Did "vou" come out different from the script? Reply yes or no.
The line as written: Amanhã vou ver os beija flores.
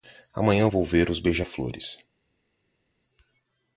no